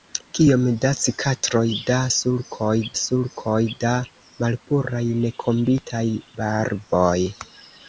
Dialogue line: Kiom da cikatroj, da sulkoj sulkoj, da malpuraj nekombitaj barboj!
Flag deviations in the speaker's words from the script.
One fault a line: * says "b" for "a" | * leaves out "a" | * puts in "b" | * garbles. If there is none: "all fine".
all fine